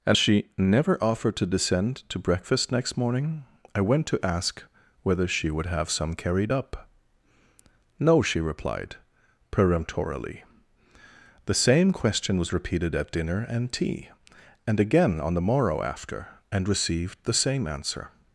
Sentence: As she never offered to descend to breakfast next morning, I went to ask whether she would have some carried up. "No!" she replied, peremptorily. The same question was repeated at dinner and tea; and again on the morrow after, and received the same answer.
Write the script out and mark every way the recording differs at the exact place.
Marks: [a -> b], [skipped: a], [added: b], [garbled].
As she never offered to descend to breakfast next morning, I went to ask whether she would have some carried up. "No!" she replied, peremptorily. The same question was repeated at dinner and tea; and again on the morrow after, and received the same answer.